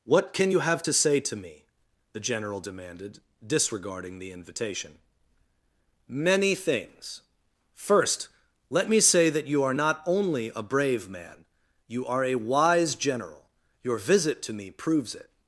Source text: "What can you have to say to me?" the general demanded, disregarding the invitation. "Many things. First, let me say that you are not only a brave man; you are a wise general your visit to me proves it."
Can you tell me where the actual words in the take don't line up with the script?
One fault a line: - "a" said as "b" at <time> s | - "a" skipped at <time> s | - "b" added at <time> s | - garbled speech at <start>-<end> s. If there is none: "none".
none